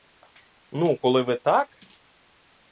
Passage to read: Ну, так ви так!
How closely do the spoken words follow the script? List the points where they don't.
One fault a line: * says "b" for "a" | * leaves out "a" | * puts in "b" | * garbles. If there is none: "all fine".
* says "коли" for "так"